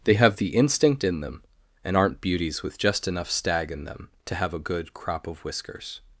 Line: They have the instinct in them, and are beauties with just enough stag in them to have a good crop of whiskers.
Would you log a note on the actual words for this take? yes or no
yes